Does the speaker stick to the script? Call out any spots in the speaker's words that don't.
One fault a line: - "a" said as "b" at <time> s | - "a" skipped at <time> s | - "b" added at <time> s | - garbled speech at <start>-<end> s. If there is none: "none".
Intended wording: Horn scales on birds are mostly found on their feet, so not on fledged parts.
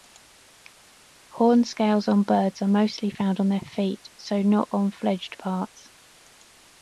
none